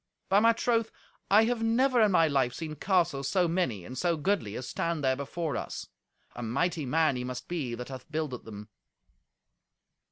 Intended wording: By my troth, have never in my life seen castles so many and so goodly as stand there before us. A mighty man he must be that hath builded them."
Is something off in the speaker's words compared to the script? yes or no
yes